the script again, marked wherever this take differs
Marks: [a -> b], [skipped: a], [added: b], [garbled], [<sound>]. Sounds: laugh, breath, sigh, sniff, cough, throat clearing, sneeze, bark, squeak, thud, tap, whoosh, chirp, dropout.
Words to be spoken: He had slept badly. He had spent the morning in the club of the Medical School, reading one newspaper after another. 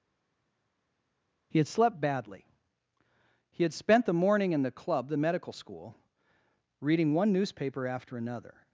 He had slept badly. He had spent the morning in the club [skipped: of] the Medical School, reading one newspaper after another.